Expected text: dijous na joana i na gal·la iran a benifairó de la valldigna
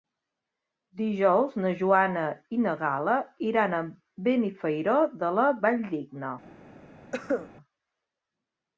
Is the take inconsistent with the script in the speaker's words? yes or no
no